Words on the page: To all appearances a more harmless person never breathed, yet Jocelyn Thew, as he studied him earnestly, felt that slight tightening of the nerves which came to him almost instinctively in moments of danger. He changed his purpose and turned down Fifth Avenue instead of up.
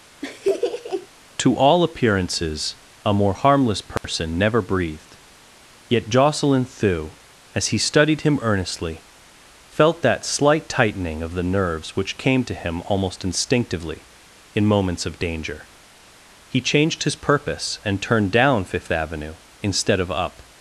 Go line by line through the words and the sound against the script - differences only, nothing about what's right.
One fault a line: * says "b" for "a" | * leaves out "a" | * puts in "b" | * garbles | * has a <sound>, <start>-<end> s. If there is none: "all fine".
* has a laugh, 0.2-1.1 s
* has a dropout, 4.0-4.0 s